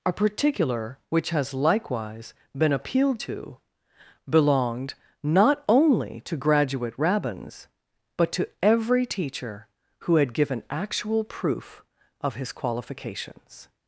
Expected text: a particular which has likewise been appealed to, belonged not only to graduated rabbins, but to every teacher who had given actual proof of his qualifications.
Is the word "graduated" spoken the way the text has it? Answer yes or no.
no